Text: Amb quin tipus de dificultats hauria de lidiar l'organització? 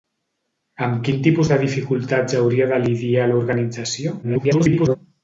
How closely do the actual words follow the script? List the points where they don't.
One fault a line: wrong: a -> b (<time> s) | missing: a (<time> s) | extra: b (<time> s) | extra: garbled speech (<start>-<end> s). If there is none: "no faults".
extra: garbled speech (4.2-5.0 s)